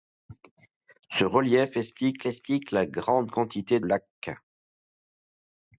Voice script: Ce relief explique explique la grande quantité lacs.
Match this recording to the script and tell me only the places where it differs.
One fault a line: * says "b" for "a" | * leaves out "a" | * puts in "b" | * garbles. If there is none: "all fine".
all fine